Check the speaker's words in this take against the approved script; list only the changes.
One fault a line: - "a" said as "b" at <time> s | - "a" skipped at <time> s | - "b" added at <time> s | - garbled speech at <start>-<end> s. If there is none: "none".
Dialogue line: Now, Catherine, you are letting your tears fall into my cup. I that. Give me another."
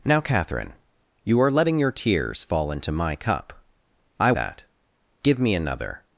none